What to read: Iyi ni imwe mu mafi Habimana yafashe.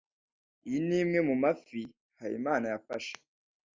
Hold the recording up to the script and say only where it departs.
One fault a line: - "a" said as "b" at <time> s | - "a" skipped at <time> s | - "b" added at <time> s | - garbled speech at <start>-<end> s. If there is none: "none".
none